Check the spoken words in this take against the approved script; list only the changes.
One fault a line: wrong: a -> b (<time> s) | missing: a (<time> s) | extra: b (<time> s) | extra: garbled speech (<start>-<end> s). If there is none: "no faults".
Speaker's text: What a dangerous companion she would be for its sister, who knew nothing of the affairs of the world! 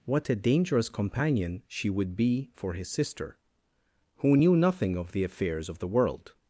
wrong: its -> his (2.7 s)